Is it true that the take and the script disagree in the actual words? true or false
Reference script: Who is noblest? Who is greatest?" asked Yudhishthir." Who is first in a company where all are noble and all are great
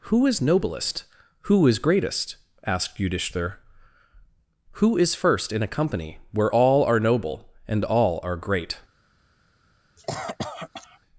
false